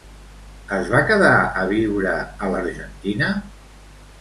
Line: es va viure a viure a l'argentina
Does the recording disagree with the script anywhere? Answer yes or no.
yes